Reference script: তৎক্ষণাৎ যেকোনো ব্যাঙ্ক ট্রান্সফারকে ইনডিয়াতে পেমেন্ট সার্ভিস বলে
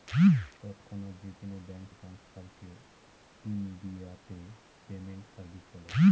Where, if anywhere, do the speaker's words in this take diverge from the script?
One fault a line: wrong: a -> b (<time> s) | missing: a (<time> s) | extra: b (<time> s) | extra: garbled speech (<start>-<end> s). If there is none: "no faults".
no faults